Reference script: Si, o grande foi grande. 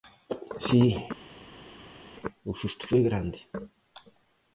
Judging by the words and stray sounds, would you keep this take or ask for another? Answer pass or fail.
fail